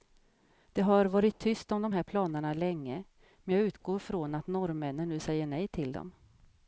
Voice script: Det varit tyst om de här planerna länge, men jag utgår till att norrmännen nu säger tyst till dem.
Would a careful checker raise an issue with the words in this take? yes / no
yes